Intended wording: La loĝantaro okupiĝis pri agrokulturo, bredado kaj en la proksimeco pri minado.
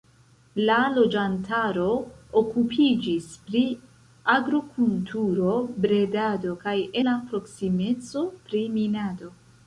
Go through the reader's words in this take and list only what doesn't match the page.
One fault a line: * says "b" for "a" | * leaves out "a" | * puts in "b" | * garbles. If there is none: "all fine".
* leaves out "en"